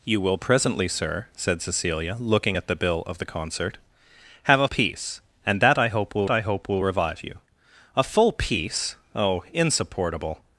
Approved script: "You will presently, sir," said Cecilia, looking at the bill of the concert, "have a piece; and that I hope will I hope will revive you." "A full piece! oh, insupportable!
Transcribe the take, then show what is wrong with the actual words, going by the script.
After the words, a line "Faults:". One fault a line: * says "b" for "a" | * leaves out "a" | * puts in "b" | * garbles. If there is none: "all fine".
"You will presently, sir," said Cecilia, looking at the bill of the concert, "have a piece; and that I hope will I hope will revive you." "A full piece! oh, insupportable!
Faults:
all fine